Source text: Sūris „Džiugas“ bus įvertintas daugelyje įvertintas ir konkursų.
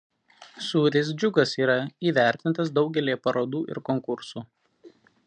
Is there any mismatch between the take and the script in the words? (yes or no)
yes